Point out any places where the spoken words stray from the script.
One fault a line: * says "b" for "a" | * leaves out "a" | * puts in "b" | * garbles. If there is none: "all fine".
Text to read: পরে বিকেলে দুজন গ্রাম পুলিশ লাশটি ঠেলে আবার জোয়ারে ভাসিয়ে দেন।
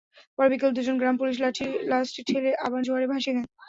all fine